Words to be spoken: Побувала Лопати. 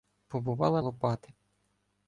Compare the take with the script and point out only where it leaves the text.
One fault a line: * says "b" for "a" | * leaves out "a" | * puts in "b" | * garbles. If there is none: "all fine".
all fine